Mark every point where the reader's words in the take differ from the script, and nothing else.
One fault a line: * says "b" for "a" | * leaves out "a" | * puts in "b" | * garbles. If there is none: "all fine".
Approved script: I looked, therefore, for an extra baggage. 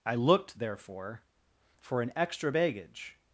all fine